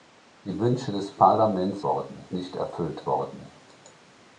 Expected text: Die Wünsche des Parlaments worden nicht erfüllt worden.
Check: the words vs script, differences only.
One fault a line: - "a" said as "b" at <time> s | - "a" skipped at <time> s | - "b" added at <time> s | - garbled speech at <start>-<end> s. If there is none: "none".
none